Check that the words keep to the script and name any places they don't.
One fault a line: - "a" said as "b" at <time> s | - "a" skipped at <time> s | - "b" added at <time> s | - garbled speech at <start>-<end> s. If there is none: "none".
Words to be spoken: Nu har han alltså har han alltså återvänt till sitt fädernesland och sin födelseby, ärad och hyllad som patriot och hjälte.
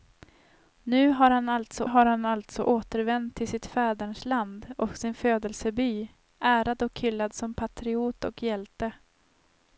none